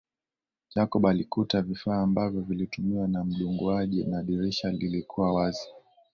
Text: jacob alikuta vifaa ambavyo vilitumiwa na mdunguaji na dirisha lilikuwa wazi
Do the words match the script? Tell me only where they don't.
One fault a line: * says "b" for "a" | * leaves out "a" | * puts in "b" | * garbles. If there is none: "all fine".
all fine